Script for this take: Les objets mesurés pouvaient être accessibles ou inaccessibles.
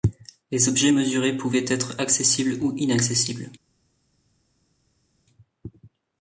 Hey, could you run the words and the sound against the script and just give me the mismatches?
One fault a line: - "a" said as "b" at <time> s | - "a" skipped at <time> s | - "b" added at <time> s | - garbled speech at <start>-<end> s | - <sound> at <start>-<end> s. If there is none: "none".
none